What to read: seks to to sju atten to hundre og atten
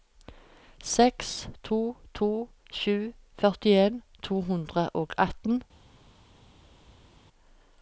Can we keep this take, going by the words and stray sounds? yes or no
no